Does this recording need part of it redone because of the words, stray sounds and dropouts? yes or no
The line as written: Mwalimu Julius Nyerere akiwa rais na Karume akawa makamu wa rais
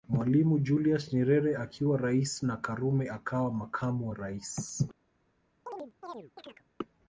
yes